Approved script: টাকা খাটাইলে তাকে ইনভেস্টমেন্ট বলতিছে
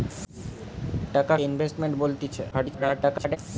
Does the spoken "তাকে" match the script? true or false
false